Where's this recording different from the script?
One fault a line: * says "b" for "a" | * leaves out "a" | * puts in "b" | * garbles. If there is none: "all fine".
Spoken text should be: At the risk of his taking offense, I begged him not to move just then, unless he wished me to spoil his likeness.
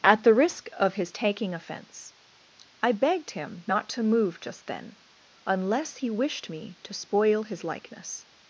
all fine